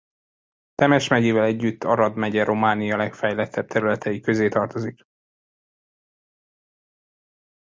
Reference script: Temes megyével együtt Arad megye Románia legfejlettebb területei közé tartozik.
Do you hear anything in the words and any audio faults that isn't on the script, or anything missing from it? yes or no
no